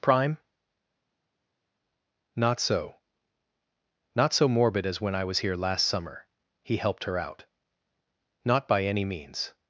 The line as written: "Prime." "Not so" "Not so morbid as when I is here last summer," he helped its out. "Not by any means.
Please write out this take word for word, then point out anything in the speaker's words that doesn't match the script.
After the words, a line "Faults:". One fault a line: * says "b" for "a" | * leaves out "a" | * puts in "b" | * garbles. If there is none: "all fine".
"Prime." "Not so" "Not so morbid as when I was here last summer," he helped her out. "Not by any means.
Faults:
* says "was" for "is"
* says "her" for "its"